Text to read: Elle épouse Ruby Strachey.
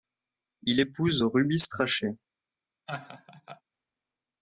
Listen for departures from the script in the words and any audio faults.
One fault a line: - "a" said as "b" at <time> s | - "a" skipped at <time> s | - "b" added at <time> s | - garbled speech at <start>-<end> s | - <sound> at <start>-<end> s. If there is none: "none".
- "Elle" said as "Il" at 0.6 s
- laugh at 2.9-3.6 s